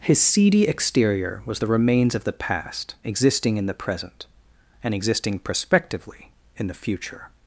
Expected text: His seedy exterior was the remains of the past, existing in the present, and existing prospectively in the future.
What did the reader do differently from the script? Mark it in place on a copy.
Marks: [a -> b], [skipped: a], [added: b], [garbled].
His seedy exterior was the remains of the past, existing in the present, and existing prospectively in the future.